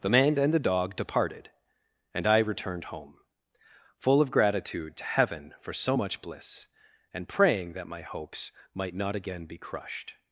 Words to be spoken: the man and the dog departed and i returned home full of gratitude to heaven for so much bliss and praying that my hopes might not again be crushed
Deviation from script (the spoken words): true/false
false